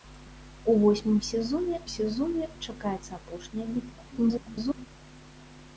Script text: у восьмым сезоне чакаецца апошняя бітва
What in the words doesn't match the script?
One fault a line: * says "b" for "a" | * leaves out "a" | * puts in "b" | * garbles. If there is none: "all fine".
* puts in "сезоне"
* garbles